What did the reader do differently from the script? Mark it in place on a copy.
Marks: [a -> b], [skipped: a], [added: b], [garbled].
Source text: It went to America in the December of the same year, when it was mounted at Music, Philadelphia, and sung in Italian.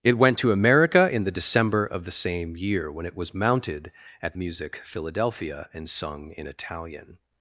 It went to America in the December of the same year, when it was mounted at Music, Philadelphia, and sung in Italian.